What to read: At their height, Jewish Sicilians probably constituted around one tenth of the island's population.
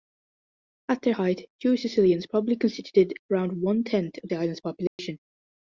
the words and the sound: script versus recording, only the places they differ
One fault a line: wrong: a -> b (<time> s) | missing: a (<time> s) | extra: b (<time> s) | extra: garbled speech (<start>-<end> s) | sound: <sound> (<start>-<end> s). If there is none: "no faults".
sound: dropout (4.9-5.0 s)